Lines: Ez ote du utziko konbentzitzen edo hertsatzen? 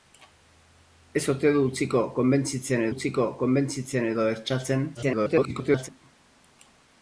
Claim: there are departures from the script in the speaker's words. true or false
true